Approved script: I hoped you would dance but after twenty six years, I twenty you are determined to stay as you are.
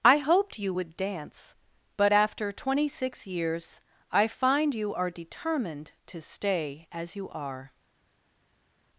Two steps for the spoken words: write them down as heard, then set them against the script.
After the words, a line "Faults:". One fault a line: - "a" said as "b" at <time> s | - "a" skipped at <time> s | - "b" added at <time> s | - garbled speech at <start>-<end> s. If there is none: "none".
I hoped you would dance but after twenty six years, I find you are determined to stay as you are.
Faults:
- "twenty" said as "find" at 4.3 s